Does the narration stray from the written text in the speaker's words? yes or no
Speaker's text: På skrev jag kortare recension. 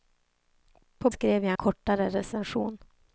no